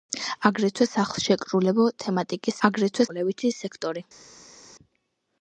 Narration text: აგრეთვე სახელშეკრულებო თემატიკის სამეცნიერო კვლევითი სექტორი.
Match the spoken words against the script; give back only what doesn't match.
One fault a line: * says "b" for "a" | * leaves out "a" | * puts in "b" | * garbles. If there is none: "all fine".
* says "აგრეთვე" for "სამეცნიერო"